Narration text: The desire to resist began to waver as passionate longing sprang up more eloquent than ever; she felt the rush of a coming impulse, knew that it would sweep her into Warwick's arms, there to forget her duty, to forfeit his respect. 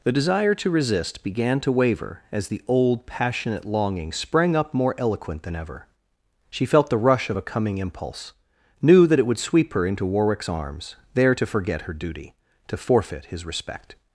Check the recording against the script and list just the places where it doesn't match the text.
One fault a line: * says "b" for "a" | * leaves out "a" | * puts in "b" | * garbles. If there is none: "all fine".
* puts in "the old"